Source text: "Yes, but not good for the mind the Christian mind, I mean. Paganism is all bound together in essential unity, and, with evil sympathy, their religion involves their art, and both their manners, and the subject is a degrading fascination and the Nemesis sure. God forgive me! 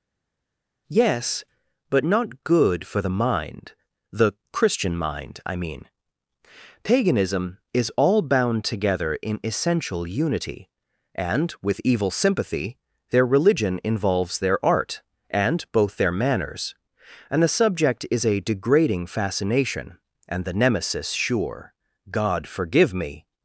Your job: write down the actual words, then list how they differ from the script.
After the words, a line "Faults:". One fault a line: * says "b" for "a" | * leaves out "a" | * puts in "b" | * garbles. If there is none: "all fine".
"Yes, but not good for the mind the Christian mind, I mean. Paganism is all bound together in essential unity, and, with evil sympathy, their religion involves their art, and both their manners, and the subject is a degrading fascination and the Nemesis sure. God forgive me!
Faults:
all fine